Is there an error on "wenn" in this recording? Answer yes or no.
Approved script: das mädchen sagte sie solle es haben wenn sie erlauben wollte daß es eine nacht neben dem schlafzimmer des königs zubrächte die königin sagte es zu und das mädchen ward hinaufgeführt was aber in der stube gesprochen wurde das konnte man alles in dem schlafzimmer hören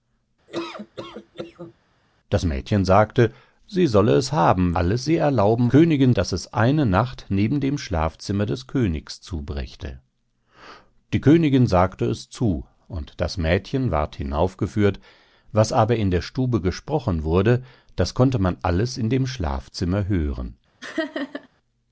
yes